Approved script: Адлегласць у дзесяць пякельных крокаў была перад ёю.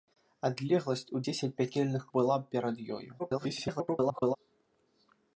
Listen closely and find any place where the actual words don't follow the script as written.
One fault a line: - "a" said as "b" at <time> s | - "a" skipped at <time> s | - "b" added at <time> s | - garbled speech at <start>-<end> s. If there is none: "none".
- "крокаў" skipped at 2.0 s
- garbled speech at 3.2-4.4 s